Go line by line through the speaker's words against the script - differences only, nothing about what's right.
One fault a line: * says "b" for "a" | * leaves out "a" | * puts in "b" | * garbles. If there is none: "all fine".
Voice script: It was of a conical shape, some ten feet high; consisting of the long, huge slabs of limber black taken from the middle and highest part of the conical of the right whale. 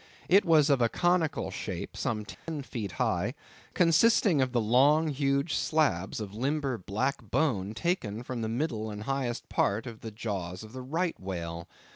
* puts in "bone"
* says "jaws" for "conical"